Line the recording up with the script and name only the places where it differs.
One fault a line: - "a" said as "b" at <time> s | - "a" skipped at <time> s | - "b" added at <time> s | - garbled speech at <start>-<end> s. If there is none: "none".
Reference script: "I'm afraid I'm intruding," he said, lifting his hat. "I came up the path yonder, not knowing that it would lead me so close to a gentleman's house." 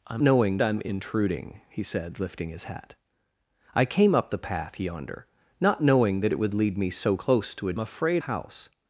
- "afraid" said as "knowing" at 0.2 s
- "gentleman's" said as "afraid" at 7.8 s